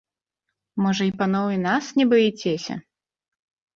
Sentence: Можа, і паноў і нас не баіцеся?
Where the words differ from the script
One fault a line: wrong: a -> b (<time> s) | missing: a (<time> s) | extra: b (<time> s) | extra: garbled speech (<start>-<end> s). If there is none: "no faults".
no faults